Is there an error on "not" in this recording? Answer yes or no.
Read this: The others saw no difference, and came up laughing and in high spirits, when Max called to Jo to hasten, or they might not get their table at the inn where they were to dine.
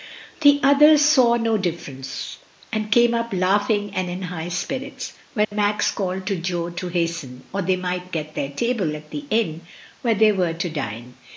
yes